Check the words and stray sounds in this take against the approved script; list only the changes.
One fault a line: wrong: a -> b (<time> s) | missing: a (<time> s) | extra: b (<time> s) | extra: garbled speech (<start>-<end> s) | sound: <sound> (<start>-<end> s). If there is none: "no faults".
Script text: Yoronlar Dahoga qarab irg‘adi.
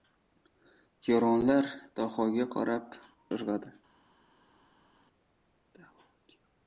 no faults